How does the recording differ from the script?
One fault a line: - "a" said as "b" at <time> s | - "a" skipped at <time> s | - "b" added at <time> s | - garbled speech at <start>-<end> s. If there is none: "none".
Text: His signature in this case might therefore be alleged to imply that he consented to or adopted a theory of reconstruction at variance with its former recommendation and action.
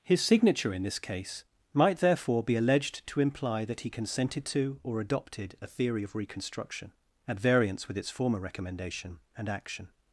none